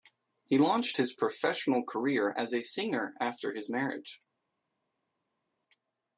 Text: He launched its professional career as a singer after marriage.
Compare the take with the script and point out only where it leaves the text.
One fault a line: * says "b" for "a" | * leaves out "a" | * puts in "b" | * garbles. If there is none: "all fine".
* says "his" for "its"
* puts in "his"